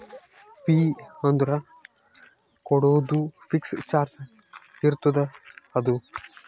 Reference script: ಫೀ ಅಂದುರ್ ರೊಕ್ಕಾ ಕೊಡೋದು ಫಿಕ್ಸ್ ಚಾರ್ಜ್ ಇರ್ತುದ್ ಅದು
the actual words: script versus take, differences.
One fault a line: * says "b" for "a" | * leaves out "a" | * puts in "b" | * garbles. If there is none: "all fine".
* leaves out "ರೊಕ್ಕಾ"